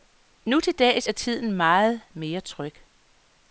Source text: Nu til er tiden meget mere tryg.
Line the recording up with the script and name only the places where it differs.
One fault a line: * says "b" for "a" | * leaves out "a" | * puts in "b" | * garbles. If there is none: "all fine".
* puts in "dags"